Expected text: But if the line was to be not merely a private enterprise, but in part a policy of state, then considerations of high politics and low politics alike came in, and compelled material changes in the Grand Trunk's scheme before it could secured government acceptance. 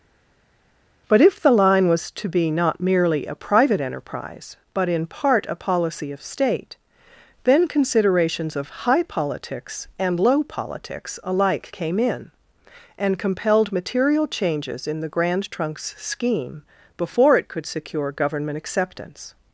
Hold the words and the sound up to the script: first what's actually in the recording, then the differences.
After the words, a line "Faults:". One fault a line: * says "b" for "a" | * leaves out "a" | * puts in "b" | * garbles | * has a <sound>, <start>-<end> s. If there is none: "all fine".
But if the line was to be not merely a private enterprise, but in part a policy of state, then considerations of high politics and low politics alike came in, and compelled material changes in the Grand Trunk's scheme before it could secure government acceptance.
Faults:
* says "secure" for "secured"